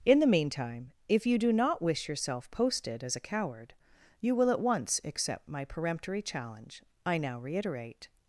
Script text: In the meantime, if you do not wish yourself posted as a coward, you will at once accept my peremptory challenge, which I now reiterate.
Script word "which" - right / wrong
wrong